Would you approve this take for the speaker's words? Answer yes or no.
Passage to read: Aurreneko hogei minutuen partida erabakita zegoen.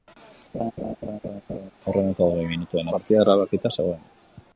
yes